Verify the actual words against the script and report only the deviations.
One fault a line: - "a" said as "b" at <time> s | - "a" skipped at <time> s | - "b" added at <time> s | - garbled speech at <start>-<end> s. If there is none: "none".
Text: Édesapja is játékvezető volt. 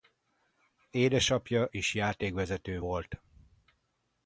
none